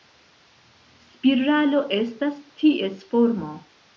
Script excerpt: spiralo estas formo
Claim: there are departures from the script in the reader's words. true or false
true